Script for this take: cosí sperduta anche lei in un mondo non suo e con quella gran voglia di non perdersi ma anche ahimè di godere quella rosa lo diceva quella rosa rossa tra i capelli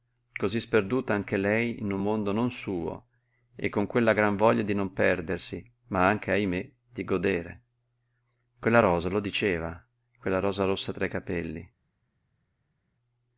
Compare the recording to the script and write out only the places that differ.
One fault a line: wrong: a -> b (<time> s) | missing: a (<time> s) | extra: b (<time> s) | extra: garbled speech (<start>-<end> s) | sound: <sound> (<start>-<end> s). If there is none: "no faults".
no faults